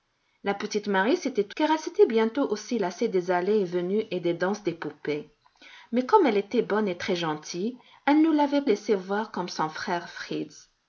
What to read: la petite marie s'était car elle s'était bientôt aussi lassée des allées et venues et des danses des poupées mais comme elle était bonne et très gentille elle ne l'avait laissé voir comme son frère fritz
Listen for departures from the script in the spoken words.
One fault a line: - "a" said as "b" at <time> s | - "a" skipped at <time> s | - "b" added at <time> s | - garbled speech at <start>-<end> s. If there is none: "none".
none